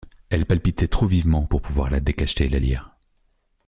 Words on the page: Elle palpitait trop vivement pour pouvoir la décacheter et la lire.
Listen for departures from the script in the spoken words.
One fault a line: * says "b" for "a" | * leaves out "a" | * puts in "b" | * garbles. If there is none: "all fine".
all fine